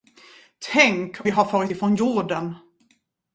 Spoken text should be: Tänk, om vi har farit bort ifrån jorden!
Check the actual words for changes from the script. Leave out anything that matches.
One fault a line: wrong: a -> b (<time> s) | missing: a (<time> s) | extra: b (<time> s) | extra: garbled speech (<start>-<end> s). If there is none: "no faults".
missing: om (1.2 s)
missing: bort (1.7 s)